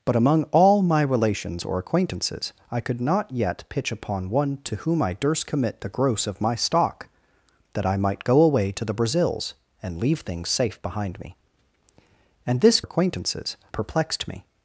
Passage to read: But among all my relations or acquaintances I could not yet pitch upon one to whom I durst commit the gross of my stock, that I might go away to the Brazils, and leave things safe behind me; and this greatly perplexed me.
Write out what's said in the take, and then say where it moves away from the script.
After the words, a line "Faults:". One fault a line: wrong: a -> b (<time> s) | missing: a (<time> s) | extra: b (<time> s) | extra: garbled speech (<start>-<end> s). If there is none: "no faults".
But among all my relations or acquaintances I could not yet pitch upon one to whom I durst commit the gross of my stock, that I might go away to the Brazils, and leave things safe behind me; and this acquaintances perplexed me.
Faults:
wrong: greatly -> acquaintances (12.8 s)